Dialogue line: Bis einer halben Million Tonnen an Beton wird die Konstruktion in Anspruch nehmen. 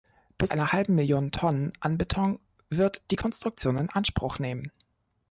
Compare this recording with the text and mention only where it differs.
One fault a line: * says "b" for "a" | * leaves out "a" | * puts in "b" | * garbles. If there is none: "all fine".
all fine